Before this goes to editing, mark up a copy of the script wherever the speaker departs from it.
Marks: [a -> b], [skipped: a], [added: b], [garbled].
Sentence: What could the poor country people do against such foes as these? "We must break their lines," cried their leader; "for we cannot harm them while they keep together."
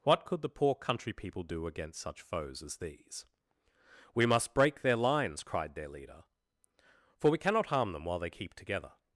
What could the poor country people do against such foes as these? "We must break their lines," cried their leader; "for we cannot harm them while they keep together."